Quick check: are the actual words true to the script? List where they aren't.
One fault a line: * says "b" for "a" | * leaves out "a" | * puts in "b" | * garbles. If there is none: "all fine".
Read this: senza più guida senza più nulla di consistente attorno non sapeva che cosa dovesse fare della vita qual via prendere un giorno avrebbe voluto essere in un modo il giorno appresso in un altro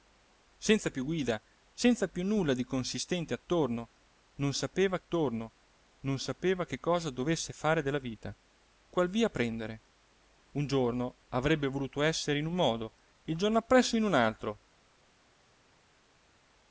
* puts in "attorno non sapeva"